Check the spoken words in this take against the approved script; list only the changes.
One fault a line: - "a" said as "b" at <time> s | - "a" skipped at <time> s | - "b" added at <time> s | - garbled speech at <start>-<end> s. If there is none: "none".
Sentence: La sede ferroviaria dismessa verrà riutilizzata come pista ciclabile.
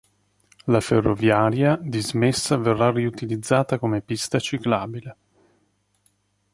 - "sede" skipped at 0.8 s